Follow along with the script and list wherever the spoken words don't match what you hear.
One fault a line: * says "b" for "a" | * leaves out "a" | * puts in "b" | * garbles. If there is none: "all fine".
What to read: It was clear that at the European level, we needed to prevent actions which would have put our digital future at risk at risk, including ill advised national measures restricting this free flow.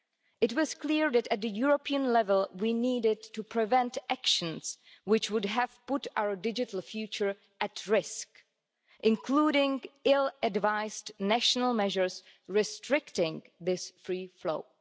* leaves out "at risk"